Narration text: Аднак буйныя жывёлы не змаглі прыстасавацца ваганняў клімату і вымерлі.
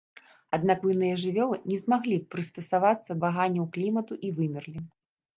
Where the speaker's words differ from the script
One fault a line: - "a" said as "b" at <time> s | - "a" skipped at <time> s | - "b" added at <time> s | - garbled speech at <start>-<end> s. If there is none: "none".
none